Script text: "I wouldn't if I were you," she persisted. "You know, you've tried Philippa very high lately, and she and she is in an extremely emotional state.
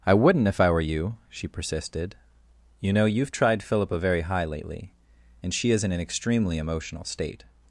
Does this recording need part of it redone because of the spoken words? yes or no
yes